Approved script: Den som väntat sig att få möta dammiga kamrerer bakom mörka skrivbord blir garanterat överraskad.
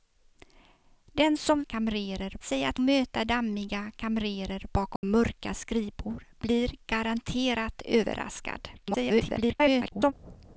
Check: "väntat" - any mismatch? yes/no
yes